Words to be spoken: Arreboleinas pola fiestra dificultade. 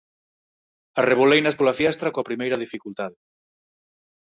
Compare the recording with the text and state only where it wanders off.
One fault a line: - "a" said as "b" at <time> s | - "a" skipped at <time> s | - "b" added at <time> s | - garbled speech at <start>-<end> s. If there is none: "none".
- "coa primeira" added at 2.1 s